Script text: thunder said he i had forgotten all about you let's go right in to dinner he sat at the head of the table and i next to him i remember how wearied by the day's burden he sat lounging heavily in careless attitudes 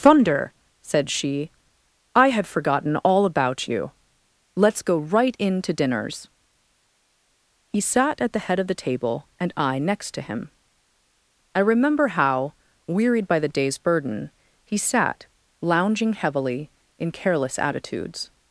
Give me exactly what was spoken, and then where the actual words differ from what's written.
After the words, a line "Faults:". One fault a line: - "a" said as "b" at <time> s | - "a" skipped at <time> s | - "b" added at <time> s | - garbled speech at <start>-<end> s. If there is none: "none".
thunder said she i had forgotten all about you let's go right in to dinners he sat at the head of the table and i next to him i remember how wearied by the day's burden he sat lounging heavily in careless attitudes
Faults:
- "he" said as "she" at 1.1 s
- "dinner" said as "dinners" at 5.7 s